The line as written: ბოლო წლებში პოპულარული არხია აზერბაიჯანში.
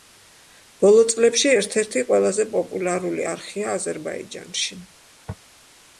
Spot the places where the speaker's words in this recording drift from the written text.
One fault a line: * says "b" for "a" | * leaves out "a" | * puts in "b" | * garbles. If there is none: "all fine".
* puts in "ერთ ერთი ყველაზე"